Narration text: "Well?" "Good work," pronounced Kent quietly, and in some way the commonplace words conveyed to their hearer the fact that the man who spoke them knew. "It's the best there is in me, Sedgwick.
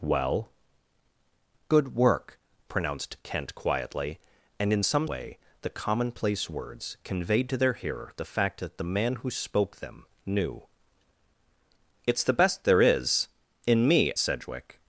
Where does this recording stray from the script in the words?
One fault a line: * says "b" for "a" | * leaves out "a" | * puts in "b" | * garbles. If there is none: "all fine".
all fine